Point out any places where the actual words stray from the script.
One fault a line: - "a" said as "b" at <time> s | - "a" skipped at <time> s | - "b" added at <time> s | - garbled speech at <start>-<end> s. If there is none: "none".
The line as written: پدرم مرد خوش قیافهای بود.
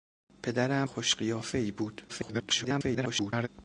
- "مرد" skipped at 0.9 s
- garbled speech at 2.1-3.5 s